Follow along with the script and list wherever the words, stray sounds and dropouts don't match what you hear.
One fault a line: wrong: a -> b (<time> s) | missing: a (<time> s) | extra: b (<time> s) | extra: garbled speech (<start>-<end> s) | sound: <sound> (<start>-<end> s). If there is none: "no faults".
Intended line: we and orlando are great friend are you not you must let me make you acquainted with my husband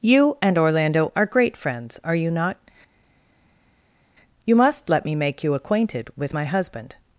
wrong: we -> you (0.0 s)
wrong: friend -> friends (1.6 s)